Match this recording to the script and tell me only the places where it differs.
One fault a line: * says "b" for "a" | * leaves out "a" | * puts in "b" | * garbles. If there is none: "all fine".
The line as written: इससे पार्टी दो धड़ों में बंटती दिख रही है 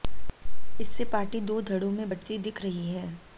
all fine